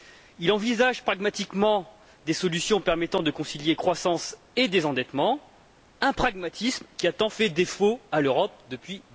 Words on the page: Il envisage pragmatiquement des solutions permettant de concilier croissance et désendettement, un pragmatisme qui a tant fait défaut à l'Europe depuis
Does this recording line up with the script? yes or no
yes